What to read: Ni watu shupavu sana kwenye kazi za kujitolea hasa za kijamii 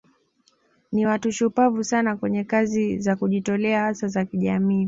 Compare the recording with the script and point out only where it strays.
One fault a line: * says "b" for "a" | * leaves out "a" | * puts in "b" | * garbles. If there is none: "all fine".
all fine